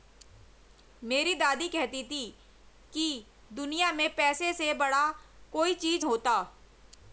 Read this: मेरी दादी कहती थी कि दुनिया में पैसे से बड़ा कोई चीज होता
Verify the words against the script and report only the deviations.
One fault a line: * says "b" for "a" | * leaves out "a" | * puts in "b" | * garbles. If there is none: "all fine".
all fine